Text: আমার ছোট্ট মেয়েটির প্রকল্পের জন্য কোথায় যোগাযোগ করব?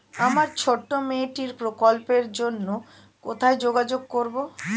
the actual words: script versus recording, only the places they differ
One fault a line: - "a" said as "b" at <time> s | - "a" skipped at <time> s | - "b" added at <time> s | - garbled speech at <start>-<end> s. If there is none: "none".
none